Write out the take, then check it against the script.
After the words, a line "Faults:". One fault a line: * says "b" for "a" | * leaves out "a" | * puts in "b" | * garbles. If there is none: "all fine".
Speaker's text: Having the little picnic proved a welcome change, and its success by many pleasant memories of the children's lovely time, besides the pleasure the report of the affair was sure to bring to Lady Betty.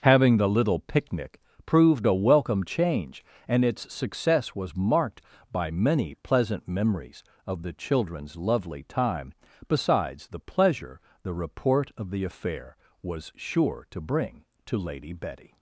Having the little picnic proved a welcome change, and its success was marked by many pleasant memories of the children's lovely time, besides the pleasure the report of the affair was sure to bring to Lady Betty.
Faults:
* puts in "was marked"